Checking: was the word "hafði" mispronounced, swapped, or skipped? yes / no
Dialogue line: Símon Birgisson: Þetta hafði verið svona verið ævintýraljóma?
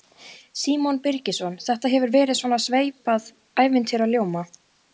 yes